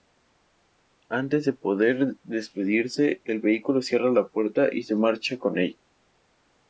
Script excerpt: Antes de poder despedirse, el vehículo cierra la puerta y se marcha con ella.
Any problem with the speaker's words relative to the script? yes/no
no